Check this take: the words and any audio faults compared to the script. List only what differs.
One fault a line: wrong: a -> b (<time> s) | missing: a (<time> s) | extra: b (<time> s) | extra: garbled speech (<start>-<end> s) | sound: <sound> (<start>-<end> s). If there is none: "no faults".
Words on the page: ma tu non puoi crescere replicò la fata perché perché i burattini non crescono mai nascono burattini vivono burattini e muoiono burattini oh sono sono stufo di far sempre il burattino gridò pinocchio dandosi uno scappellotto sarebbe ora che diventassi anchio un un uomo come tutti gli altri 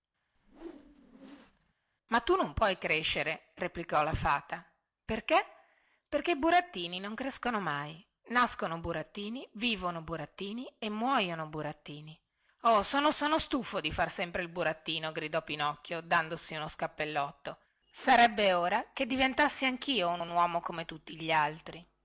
sound: whoosh (0.3-1.7 s)